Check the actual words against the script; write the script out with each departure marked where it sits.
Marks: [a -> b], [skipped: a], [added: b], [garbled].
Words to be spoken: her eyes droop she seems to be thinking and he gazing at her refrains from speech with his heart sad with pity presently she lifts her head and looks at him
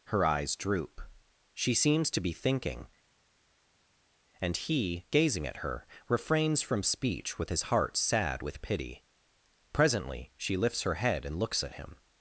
her eyes droop she seems to be thinking and he gazing at her refrains from speech with his heart sad with pity presently she lifts her head and looks at him